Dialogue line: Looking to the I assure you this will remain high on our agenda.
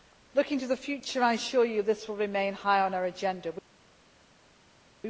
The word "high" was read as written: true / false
true